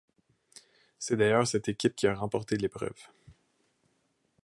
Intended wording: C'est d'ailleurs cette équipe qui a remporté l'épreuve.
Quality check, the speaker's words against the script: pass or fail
pass